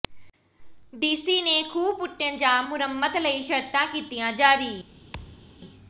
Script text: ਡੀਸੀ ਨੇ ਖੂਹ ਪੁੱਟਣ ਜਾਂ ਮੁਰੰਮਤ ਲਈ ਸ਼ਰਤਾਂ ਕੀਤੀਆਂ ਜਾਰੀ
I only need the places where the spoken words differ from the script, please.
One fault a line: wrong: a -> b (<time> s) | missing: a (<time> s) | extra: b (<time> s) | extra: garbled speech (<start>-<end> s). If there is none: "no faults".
no faults